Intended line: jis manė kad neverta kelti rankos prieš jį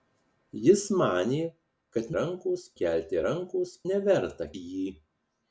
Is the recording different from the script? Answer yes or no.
yes